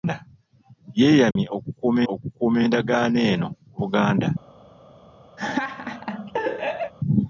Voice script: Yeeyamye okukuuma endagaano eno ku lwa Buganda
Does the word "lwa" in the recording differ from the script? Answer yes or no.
yes